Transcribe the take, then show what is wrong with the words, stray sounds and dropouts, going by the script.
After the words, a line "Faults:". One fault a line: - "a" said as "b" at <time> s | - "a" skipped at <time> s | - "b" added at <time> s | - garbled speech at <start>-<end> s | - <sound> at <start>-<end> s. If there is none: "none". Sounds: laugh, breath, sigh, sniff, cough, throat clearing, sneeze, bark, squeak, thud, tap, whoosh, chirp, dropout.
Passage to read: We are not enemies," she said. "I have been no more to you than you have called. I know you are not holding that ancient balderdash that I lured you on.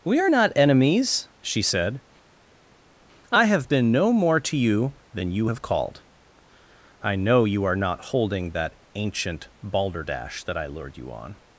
We are not enemies," she said. "I have been no more to you than you have called. I know you are not holding that ancient balderdash that I lured you on.
Faults:
none